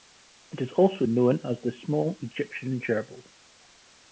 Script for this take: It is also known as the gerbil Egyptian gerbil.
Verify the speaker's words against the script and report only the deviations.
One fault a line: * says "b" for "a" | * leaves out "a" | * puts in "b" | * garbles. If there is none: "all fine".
* says "small" for "gerbil"